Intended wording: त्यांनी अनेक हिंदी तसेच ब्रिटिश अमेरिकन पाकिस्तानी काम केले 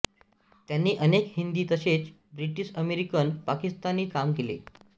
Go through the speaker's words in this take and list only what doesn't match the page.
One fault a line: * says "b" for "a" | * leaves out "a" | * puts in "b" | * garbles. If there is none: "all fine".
all fine